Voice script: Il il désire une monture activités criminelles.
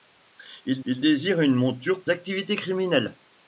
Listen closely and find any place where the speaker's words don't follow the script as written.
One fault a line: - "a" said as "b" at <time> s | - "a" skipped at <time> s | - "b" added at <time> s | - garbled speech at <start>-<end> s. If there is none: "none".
none